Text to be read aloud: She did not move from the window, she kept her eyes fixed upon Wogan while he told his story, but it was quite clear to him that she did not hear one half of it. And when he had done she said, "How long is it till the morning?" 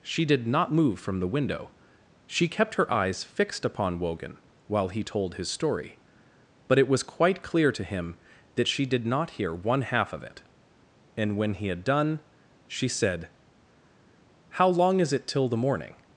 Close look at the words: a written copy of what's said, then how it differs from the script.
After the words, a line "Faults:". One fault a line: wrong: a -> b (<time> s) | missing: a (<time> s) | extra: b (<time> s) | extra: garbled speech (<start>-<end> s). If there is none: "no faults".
She did not move from the window, she kept her eyes fixed upon Wogan while he told his story, but it was quite clear to him that she did not hear one half of it. And when he had done she said, "How long is it till the morning?"
Faults:
no faults